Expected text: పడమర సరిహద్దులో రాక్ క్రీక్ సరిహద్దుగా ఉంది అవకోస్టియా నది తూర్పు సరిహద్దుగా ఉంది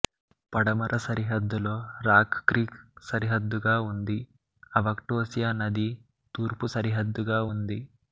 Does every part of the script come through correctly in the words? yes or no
yes